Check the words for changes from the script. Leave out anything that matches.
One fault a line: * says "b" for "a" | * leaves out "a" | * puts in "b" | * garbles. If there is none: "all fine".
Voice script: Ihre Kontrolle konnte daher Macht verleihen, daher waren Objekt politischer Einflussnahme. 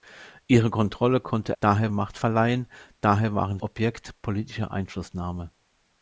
all fine